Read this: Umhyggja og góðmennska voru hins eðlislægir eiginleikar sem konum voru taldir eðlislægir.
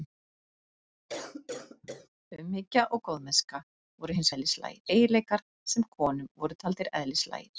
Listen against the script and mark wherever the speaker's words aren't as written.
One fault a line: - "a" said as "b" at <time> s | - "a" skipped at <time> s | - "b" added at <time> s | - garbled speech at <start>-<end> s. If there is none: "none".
none